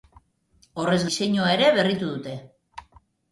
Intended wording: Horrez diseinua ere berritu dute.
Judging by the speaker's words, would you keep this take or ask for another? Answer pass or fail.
pass